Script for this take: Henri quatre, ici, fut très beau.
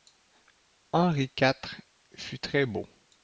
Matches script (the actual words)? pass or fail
fail